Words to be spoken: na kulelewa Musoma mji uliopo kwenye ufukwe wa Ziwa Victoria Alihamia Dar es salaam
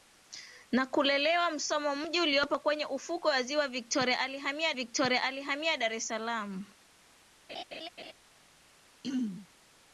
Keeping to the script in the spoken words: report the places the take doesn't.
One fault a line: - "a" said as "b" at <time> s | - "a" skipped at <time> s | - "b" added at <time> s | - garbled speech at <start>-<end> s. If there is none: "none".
- "Victoria Alihamia" added at 4.7 s